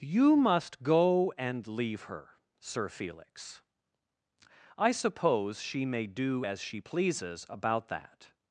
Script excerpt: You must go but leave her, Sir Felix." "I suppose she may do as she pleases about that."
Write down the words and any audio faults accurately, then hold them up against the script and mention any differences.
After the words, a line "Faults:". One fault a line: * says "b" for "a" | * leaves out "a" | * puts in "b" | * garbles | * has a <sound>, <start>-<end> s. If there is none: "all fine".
You must go and leave her, Sir Felix." "I suppose she may do as she pleases about that."
Faults:
* says "and" for "but"